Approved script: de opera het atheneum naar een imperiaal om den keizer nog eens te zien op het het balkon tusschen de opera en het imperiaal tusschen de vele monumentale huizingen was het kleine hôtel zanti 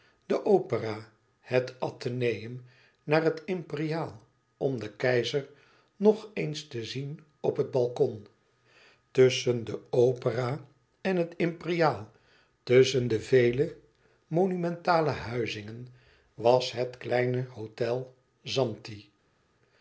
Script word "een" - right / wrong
wrong